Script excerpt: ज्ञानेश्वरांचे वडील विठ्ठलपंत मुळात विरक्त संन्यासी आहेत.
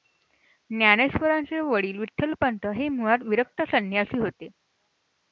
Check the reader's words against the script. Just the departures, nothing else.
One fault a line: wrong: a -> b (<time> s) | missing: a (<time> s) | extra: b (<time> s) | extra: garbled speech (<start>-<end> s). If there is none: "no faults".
extra: हे (2.8 s)
wrong: आहेत -> होते (4.2 s)